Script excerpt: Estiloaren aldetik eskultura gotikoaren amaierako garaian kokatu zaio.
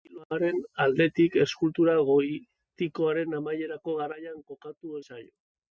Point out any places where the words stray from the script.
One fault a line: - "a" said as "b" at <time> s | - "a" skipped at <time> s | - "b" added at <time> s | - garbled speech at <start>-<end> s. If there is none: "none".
none